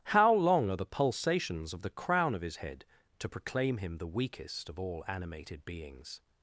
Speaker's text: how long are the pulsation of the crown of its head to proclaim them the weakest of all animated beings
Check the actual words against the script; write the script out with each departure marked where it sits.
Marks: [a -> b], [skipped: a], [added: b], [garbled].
how long are the [pulsation -> pulsations] of the crown of [its -> his] head to proclaim [them -> him] the weakest of all animated beings